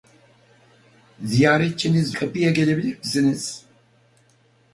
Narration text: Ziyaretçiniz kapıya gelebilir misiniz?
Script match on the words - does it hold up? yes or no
yes